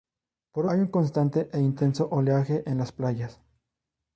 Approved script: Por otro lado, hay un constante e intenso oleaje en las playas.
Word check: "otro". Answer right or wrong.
wrong